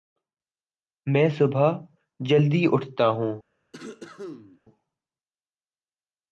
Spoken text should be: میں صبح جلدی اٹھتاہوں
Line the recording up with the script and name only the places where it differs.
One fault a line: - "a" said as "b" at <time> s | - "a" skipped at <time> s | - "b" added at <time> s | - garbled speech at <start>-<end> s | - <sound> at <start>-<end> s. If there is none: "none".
- cough at 3.7-4.6 s